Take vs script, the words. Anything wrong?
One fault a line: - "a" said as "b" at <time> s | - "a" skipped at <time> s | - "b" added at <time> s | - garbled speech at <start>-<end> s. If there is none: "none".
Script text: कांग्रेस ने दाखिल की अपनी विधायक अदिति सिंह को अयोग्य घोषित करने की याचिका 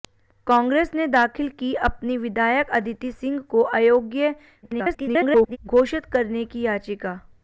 - garbled speech at 4.6-5.6 s